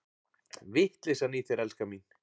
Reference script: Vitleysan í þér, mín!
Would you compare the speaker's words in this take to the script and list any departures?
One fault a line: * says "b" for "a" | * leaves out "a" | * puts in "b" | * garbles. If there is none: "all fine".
* puts in "elskan"